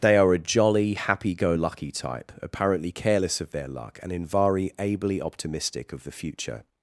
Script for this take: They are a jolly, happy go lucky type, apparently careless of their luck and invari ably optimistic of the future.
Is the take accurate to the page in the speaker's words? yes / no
yes